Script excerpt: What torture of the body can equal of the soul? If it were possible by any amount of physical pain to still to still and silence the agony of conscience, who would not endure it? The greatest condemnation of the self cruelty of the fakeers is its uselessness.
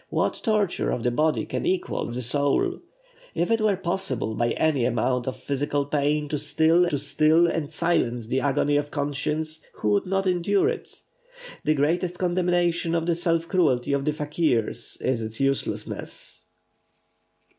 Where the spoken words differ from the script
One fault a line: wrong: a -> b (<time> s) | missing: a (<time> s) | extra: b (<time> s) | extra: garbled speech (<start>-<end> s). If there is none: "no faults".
no faults